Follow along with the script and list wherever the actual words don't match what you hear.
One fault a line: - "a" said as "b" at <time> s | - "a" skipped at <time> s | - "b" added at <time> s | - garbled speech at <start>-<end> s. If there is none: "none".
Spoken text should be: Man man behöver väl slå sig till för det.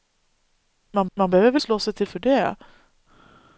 none